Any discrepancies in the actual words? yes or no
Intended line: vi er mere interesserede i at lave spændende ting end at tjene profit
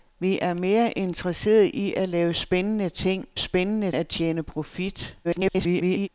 yes